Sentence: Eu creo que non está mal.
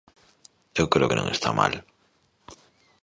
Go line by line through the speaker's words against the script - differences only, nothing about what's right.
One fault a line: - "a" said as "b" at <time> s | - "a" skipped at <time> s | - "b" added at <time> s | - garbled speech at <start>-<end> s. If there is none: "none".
none